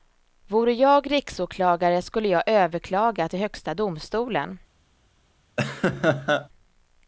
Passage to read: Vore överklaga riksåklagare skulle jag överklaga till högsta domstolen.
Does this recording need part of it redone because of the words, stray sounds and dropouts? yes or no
yes